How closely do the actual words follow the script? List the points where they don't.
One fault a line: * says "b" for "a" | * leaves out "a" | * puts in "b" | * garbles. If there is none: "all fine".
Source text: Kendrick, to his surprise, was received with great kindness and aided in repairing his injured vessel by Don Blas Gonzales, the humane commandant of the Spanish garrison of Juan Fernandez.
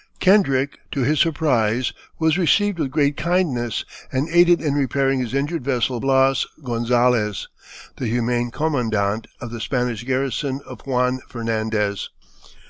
* leaves out "by Don"